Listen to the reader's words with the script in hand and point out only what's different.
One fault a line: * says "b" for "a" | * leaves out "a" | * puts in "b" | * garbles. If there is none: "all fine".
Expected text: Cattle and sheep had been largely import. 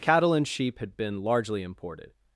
* says "imported" for "import"